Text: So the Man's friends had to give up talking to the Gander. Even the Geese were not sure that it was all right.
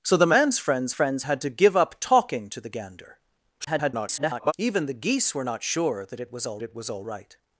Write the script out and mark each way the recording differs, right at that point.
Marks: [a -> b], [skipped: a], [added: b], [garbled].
So the Man's friends [added: friends] had to give up talking to the Gander. [garbled] Even the Geese were not sure that it was all [added: it was all] right.